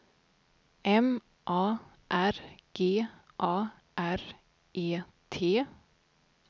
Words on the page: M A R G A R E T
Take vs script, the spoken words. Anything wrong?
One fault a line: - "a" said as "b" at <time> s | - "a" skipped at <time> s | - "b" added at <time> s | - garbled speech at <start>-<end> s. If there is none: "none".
none